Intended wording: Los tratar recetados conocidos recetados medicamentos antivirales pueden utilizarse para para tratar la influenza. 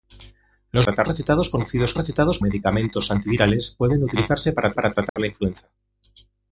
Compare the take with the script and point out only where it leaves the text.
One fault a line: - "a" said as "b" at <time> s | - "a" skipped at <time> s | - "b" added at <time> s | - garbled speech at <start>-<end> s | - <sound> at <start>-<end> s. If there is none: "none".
- dropout at 5.1-5.2 s